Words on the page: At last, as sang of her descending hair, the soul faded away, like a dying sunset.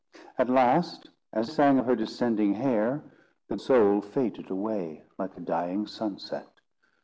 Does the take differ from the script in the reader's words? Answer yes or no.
no